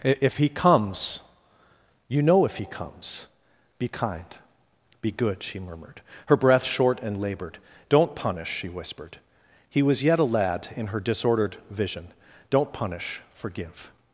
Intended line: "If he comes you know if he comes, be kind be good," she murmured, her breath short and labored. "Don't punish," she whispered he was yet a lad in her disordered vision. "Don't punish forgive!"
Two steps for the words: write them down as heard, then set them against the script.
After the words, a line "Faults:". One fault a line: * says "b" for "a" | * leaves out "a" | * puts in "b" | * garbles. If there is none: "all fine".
"If he comes you know if he comes, be kind be good," she murmured, her breath short and labored. "Don't punish," she whispered he was yet a lad in her disordered vision. "Don't punish forgive!"
Faults:
all fine